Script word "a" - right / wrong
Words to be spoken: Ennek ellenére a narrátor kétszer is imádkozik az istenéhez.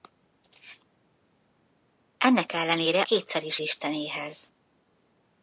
wrong